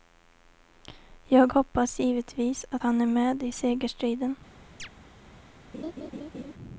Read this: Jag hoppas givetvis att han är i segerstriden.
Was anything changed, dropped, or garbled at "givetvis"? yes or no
no